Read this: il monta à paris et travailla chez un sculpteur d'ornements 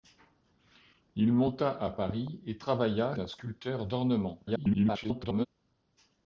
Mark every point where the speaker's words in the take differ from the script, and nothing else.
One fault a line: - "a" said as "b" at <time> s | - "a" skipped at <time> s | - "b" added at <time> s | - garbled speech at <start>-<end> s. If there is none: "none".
- "chez" skipped at 3.1 s
- garbled speech at 4.5-5.5 s